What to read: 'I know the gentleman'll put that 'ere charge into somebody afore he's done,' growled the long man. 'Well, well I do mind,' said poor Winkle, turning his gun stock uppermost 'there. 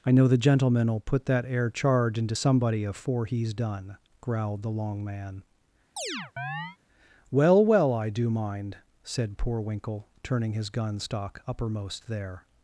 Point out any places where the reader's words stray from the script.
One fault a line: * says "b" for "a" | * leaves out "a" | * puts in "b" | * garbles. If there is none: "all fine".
all fine